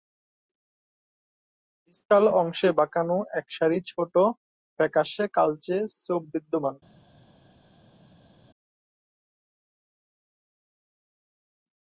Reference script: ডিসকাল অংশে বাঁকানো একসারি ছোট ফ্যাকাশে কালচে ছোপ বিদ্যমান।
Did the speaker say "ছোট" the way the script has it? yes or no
yes